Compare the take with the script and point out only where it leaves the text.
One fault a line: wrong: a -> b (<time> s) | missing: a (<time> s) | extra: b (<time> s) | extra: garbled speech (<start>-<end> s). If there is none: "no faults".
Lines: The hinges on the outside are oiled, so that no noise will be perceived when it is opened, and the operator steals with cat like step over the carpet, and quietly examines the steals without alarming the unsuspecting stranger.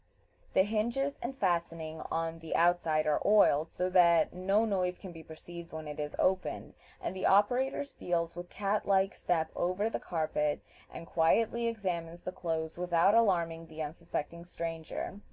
extra: and fastening (1.2 s)
wrong: will -> can (5.0 s)
wrong: steals -> clothes (12.3 s)